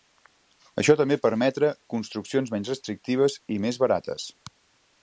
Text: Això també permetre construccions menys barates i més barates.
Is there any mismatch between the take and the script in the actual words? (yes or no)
yes